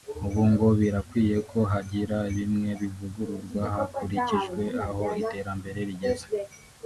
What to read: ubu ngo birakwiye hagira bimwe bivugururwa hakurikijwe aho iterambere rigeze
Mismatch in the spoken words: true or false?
true